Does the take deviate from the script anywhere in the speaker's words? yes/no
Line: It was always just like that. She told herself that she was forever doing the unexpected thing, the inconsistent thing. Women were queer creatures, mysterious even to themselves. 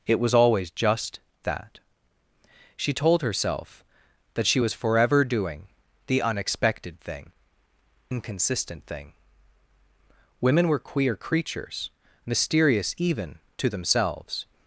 yes